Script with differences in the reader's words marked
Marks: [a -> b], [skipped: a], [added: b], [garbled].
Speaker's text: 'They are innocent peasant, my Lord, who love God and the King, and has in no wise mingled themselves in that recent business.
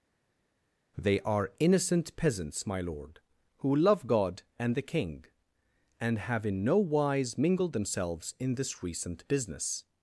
'They are innocent [peasant, -> peasants] my Lord, who love God and the King, and [has -> have] in no wise mingled themselves in [that -> this] recent business.